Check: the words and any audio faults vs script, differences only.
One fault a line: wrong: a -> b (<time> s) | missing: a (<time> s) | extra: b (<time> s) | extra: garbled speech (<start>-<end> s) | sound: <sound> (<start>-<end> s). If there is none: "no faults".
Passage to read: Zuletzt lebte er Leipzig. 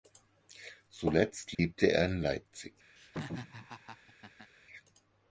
sound: dropout (1.5-1.6 s)
extra: in (2.0 s)
sound: laugh (3.0-4.5 s)